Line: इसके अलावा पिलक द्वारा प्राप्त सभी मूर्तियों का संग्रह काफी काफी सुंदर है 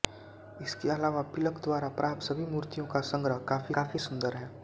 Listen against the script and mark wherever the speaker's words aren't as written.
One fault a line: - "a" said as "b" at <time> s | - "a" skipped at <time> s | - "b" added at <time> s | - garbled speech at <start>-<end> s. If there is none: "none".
none